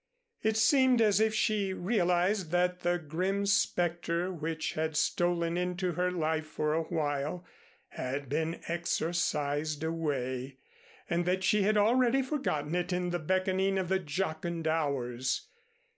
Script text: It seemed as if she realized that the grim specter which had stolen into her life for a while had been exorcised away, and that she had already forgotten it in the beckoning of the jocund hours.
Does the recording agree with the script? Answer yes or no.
yes